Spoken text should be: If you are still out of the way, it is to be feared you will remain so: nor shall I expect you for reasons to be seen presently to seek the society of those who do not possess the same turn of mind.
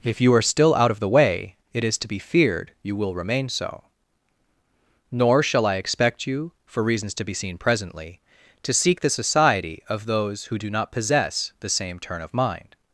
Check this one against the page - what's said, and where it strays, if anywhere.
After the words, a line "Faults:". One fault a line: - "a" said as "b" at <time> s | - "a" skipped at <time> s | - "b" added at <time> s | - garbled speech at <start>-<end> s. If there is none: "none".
If you are still out of the way, it is to be feared you will remain so: nor shall I expect you for reasons to be seen presently to seek the society of those who do not possess the same turn of mind.
Faults:
none